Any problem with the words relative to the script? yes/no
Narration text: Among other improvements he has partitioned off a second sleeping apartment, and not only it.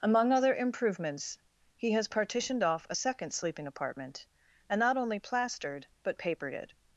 yes